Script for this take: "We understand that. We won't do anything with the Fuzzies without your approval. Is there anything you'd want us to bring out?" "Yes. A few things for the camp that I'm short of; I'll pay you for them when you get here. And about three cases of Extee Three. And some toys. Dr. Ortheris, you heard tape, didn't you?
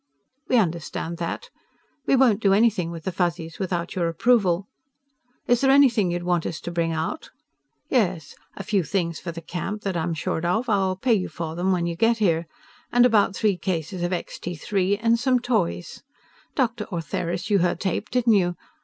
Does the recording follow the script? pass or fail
pass